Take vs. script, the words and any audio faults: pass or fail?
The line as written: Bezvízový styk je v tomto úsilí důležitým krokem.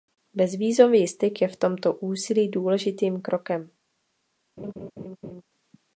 fail